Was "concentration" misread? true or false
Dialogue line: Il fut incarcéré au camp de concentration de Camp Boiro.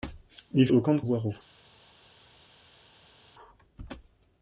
true